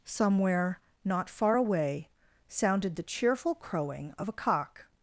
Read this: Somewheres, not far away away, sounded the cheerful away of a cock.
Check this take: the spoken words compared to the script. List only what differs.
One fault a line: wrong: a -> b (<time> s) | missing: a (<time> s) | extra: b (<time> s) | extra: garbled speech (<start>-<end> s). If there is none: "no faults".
wrong: Somewheres -> Somewhere (0.0 s)
missing: away (2.1 s)
wrong: away -> crowing (3.5 s)